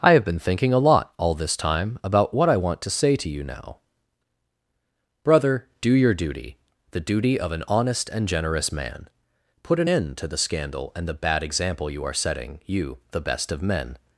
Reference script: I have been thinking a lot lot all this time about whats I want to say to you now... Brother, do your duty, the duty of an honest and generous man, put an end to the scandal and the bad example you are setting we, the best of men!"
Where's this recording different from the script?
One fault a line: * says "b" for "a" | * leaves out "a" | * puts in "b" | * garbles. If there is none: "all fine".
* leaves out "lot"
* says "what" for "whats"
* says "you" for "we"